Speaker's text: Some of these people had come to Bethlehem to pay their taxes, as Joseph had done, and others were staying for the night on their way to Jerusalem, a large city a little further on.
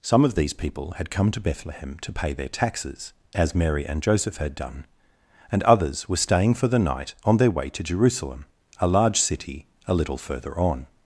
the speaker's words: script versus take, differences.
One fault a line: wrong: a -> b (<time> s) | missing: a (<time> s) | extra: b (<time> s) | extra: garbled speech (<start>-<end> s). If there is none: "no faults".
extra: Mary and (3.5 s)